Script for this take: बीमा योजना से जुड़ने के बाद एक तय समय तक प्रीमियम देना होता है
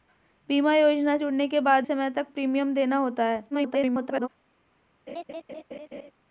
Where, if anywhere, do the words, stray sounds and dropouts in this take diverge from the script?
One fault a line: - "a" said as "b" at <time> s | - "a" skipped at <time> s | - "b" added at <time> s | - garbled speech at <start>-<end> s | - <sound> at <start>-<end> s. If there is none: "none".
- "से" skipped at 1.2 s
- "एक तय" skipped at 1.9 s
- garbled speech at 3.5-4.3 s
- laugh at 5.1-6.1 s